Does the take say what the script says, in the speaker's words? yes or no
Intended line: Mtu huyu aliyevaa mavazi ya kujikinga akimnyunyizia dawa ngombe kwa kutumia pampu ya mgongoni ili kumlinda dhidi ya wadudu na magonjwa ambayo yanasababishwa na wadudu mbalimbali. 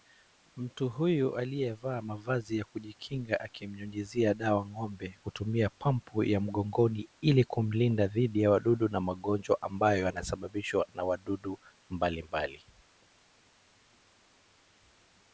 no